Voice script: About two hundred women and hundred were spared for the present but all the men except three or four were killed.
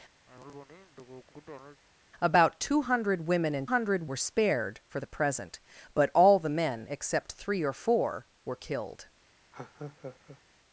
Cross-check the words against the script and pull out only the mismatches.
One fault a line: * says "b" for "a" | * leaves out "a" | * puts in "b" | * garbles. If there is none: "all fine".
all fine